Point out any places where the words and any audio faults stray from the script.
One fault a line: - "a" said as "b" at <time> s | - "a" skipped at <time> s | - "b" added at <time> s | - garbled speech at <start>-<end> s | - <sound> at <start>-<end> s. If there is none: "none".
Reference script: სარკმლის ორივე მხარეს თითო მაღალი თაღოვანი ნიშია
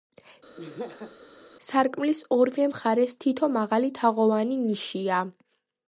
- laugh at 0.6-1.2 s